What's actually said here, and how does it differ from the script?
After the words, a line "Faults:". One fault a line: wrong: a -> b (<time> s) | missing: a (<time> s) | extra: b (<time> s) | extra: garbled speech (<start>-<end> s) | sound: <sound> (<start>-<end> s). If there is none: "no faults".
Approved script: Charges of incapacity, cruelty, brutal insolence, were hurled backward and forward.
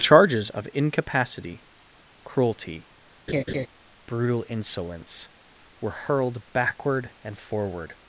Charges of incapacity, cruelty, brutal insolence, were hurled backward and forward.
Faults:
sound: laugh (3.3-3.7 s)